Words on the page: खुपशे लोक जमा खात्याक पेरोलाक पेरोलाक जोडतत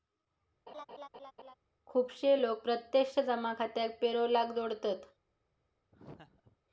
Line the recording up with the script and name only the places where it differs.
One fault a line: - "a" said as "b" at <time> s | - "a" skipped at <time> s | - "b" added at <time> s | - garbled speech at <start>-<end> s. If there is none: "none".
- "प्रत्यक्ष" added at 2.6 s
- "पेरोलाक" skipped at 4.5 s